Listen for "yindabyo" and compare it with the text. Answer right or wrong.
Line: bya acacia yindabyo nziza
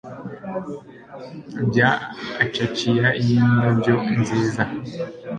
right